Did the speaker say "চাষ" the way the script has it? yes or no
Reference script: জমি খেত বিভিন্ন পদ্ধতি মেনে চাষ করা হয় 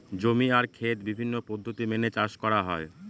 yes